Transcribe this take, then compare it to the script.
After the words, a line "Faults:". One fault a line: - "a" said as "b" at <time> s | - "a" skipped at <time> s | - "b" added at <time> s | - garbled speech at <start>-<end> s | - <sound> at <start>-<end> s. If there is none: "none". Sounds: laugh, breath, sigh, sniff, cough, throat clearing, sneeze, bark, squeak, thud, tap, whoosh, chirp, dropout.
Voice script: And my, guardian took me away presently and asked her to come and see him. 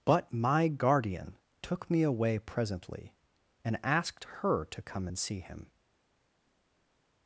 But my, guardian took me away presently and asked her to come and see him.
Faults:
- "And" said as "But" at 0.1 s